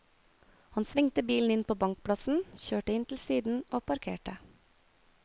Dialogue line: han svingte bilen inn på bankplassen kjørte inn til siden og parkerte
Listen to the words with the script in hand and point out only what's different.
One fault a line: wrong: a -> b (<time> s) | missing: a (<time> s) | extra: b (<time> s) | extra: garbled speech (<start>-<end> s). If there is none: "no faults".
no faults